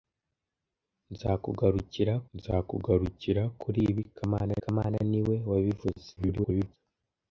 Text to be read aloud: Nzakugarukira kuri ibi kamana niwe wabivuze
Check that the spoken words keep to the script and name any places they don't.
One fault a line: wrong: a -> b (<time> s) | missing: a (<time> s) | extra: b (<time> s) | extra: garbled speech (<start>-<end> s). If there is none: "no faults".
extra: nzakugarukira (2.4 s)
extra: kamana (4.6 s)
extra: garbled speech (6.2-6.8 s)